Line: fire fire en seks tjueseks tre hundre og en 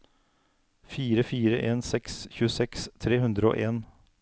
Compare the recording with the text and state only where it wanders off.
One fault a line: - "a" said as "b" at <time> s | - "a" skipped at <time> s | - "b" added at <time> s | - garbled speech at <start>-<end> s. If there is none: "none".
none